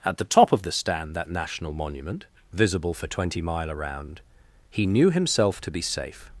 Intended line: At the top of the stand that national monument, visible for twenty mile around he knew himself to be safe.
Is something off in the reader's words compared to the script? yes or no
no